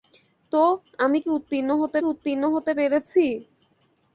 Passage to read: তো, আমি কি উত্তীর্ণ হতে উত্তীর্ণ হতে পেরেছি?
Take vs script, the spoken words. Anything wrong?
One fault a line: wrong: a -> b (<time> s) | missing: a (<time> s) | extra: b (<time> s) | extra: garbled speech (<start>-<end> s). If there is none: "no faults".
no faults